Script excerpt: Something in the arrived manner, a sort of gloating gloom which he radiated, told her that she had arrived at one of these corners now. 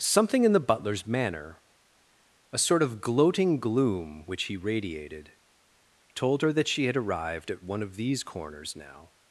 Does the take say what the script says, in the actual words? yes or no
no